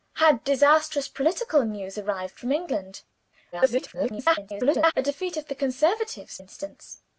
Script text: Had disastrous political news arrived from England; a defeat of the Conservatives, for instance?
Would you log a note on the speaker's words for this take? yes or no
yes